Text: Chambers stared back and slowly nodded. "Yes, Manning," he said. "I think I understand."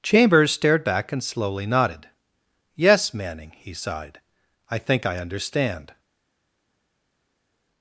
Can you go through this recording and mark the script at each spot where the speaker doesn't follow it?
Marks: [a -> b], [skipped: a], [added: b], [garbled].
Chambers stared back and slowly nodded. "Yes, Manning," he [said. -> sighed] "I think I understand."